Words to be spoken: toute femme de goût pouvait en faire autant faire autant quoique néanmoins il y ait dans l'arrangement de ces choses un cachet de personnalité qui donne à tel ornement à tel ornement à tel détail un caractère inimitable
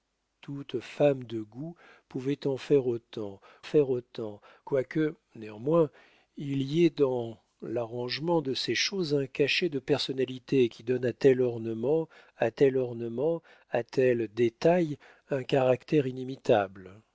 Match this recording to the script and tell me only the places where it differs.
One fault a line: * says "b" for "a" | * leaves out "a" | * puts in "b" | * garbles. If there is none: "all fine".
all fine